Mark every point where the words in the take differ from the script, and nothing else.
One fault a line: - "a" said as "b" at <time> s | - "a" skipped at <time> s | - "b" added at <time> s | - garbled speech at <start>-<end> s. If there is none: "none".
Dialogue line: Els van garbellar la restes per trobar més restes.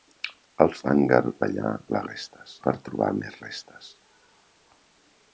none